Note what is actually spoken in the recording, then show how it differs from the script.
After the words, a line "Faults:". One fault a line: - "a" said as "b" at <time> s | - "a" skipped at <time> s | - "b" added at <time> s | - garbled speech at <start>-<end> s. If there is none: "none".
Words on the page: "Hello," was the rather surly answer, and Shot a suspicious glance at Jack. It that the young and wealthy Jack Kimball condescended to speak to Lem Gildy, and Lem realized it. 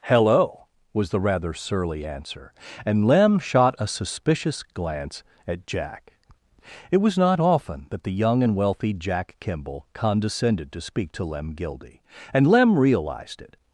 "Hello," was the rather surly answer, and Lem shot a suspicious glance at Jack. It was not often that the young and wealthy Jack Kimball condescended to speak to Lem Gildy, and Lem realized it.
Faults:
- "Lem" added at 3.1 s
- "was not often" added at 7.0 s